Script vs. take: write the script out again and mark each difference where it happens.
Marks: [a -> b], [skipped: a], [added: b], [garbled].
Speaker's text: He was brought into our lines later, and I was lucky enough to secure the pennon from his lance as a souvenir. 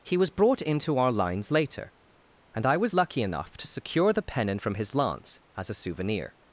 He was brought into our lines later, and I was lucky enough to secure the pennon from his lance as a souvenir.